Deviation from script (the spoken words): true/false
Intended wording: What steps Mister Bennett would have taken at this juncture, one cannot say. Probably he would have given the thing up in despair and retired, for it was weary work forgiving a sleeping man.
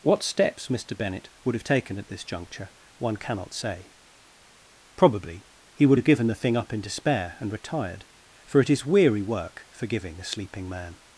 true